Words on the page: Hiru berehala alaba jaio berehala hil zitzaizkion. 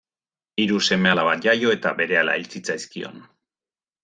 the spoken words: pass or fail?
fail